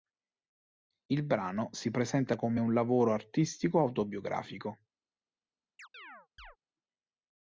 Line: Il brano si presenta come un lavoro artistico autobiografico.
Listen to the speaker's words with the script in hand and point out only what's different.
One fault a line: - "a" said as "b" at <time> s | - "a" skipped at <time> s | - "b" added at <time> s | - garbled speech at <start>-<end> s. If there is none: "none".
none